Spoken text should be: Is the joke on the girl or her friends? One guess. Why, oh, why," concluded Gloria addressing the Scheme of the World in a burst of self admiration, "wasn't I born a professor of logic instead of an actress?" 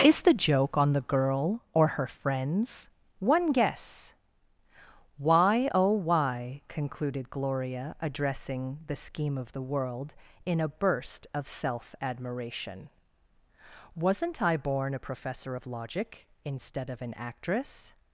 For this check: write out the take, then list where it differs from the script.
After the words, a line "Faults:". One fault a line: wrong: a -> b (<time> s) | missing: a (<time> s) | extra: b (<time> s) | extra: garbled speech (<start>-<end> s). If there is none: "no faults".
Is the joke on the girl or her friends? One guess. Why, oh, why," concluded Gloria addressing the Scheme of the World in a burst of self admiration, "wasn't I born a professor of logic instead of an actress?"
Faults:
no faults